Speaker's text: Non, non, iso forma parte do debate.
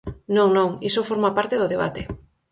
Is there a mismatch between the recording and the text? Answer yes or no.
no